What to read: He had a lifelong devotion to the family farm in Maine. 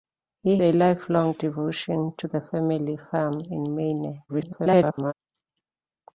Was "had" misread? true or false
true